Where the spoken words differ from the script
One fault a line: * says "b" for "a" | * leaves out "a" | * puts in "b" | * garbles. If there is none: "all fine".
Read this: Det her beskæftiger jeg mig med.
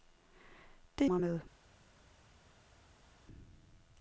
* leaves out "her beskæftiger jeg"